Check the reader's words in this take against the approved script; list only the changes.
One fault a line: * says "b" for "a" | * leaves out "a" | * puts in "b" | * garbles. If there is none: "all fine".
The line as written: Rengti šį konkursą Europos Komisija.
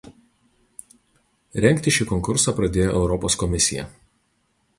* puts in "pradėjo"